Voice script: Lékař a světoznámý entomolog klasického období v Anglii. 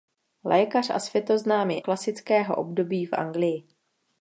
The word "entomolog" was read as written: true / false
false